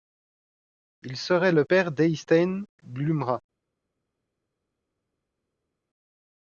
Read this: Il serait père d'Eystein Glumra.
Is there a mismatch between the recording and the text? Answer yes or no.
yes